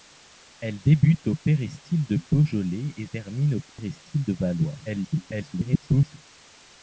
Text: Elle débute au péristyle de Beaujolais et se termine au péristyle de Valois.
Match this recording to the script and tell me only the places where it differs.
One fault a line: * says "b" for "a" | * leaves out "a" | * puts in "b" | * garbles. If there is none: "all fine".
* leaves out "se"
* garbles